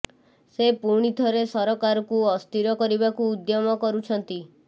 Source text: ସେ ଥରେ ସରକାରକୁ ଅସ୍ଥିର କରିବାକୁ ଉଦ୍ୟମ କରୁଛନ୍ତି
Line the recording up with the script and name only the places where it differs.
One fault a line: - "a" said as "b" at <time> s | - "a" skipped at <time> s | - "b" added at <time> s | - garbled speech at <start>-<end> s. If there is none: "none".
- "ପୁଣି" added at 0.8 s